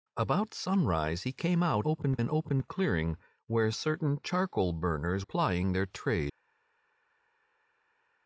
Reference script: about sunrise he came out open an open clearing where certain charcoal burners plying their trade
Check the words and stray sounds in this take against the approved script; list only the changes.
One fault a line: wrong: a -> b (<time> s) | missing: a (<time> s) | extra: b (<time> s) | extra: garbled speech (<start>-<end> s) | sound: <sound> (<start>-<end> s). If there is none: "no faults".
no faults